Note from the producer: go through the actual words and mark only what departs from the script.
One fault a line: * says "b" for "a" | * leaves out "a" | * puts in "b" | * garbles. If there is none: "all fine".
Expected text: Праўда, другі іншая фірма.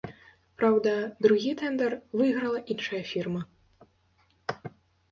* puts in "тэндар выйграла"